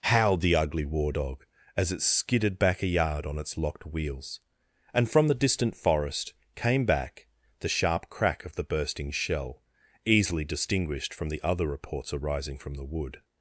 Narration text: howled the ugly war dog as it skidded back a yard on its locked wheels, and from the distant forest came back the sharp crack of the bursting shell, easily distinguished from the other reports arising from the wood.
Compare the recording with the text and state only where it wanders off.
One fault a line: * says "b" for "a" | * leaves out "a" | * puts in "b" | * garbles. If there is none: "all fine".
all fine